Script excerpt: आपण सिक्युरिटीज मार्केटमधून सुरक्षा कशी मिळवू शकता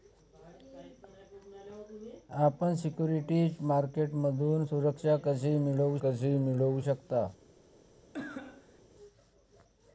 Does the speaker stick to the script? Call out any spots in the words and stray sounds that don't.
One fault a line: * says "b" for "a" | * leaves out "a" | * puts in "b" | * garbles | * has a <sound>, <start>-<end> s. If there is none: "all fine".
* puts in "कशी मिळवू"
* has a cough, 8.1-8.8 s